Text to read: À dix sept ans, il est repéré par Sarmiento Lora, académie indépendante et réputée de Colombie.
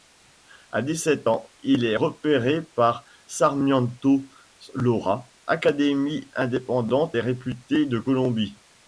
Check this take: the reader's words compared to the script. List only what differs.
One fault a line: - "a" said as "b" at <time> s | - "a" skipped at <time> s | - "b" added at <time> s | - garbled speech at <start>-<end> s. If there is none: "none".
none